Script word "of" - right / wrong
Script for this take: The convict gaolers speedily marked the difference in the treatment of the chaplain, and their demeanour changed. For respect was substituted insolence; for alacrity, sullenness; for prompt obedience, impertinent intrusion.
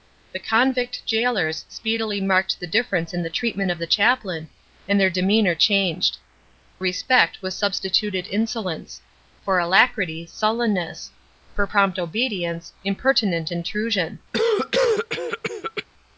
right